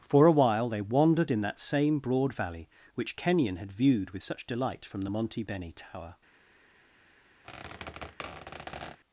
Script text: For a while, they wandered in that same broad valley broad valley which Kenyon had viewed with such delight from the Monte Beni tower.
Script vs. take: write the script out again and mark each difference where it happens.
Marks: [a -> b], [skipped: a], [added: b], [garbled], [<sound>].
For a while, they wandered in that same broad valley [skipped: broad valley] which Kenyon had viewed with such delight from the Monte Beni tower. [squeak]